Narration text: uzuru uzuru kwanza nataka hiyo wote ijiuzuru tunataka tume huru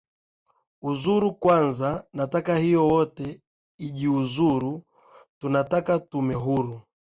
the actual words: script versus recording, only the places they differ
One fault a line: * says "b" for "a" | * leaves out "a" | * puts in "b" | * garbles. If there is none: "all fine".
* leaves out "uzuru"